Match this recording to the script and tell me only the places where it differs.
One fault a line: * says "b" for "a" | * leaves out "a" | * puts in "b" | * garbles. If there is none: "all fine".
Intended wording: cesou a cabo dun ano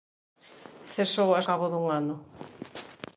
all fine